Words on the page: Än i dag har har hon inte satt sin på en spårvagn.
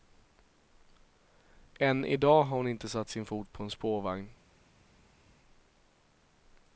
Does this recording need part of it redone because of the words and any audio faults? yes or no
yes